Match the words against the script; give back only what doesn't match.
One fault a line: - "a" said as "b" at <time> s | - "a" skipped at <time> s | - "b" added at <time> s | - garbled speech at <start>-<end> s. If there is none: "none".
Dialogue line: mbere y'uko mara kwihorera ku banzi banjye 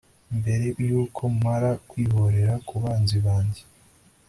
none